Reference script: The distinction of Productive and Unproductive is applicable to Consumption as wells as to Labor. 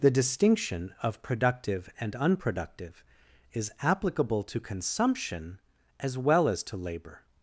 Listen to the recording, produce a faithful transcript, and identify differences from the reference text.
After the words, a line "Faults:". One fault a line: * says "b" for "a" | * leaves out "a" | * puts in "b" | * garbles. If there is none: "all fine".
The distinction of Productive and Unproductive is applicable to Consumption as well as to Labor.
Faults:
* says "well" for "wells"